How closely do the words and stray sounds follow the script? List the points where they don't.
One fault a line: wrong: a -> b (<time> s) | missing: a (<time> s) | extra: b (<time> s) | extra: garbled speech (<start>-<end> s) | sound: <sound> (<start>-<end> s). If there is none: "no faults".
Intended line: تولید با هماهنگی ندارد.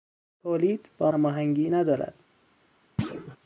sound: thud (3.0-3.4 s)